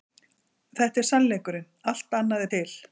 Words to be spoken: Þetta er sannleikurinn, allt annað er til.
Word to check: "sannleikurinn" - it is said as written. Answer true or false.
true